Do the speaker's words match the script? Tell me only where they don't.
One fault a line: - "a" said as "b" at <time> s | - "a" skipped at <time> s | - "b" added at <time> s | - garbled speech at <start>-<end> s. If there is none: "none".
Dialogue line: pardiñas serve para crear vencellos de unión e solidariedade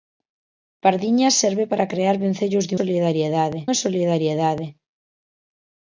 - "unión" said as "solidariedade" at 2.8 s